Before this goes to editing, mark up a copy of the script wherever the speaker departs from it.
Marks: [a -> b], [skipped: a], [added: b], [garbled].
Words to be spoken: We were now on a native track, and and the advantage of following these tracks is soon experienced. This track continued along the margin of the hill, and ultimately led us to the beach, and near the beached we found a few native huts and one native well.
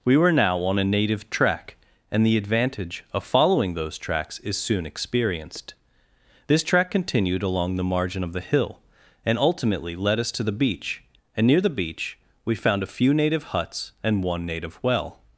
We were now on a native track, and [skipped: and] the advantage of following [these -> those] tracks is soon experienced. This track continued along the margin of the hill, and ultimately led us to the beach, and near the [beached -> beach] we found a few native huts and one native well.